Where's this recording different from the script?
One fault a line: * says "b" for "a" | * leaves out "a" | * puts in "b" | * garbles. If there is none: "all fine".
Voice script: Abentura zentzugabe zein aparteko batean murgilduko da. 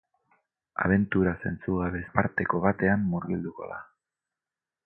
* leaves out "zein"